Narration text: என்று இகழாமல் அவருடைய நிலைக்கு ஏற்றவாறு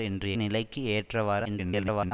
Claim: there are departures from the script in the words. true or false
true